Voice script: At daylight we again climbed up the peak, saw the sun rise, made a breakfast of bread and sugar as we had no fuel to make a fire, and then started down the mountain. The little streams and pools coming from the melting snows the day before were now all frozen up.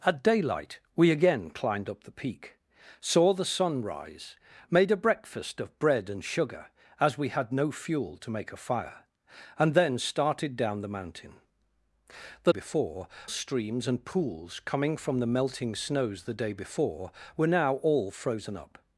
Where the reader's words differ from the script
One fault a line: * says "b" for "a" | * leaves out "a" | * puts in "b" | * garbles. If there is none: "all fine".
* says "before" for "little"